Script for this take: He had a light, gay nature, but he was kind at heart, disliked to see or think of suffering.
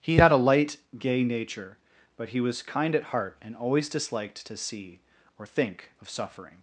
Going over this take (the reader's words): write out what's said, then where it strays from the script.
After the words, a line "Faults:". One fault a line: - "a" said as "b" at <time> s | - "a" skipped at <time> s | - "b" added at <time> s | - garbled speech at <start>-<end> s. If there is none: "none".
He had a light, gay nature, but he was kind at heart, and always disliked to see or think of suffering.
Faults:
- "and always" added at 3.4 s